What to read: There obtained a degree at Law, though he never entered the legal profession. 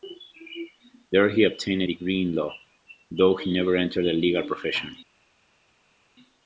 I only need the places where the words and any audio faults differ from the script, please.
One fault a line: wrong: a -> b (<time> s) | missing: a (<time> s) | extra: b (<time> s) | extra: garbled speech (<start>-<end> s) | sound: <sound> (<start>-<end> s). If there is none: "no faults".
extra: he (1.3 s)
wrong: at -> in (2.2 s)